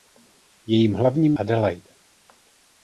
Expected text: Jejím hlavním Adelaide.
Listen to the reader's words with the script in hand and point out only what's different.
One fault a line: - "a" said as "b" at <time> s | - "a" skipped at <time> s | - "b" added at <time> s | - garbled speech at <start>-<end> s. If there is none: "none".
none